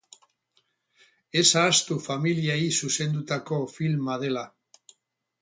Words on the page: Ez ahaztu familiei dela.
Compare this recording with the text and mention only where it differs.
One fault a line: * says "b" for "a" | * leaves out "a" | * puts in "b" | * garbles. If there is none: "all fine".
* puts in "zuzendutako filma"